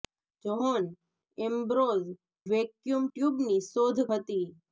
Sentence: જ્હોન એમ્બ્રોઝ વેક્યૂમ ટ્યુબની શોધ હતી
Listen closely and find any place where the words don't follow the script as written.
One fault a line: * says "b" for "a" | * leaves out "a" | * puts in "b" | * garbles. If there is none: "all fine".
all fine